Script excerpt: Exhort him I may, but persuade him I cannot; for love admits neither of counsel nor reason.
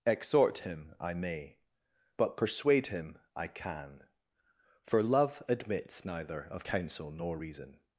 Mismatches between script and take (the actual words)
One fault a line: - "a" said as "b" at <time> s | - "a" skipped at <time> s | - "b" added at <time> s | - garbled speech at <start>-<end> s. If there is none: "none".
- "cannot" said as "can" at 3.5 s